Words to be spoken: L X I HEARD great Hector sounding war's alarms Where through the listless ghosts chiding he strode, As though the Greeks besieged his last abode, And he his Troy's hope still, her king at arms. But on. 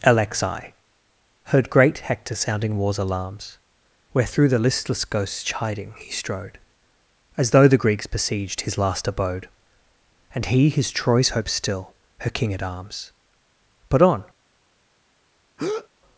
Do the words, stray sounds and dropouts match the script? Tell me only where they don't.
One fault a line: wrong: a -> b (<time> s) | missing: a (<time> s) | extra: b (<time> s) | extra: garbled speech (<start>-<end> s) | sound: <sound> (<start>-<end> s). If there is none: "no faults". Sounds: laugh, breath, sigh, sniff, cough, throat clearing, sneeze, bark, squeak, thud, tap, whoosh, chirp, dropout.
sound: breath (15.6-15.9 s)